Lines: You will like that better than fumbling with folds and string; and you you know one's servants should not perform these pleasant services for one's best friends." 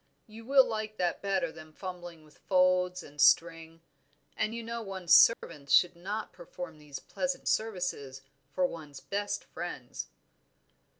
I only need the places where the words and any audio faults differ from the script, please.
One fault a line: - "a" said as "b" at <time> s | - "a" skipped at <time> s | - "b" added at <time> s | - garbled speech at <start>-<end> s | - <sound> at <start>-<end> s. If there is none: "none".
- "you" skipped at 4.6 s
- dropout at 5.3-5.4 s